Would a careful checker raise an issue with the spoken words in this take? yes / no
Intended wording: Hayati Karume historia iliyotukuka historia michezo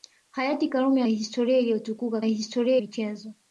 no